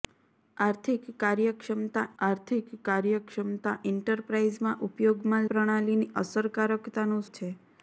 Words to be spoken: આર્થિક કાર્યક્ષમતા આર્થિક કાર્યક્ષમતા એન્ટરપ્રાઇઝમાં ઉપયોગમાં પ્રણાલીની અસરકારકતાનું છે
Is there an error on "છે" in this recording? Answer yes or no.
no